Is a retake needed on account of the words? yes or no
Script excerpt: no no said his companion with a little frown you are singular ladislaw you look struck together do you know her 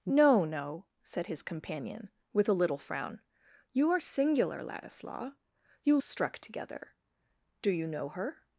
yes